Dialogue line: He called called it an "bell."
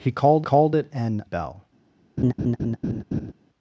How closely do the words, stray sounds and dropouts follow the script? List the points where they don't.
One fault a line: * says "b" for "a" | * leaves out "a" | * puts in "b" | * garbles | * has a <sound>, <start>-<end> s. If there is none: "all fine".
* has a laugh, 2.2-3.3 s